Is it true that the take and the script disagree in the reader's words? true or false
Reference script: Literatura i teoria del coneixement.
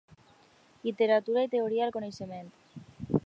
false